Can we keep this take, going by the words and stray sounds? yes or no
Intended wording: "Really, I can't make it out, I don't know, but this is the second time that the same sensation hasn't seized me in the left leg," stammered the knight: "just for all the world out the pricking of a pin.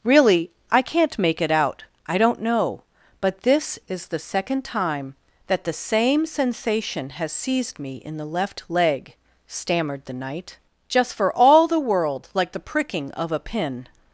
no